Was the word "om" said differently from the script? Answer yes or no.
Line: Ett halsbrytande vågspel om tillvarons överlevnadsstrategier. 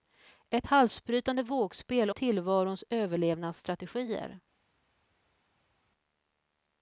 yes